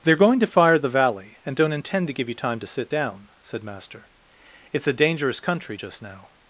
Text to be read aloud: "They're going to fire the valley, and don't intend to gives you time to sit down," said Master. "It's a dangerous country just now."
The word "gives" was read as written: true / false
false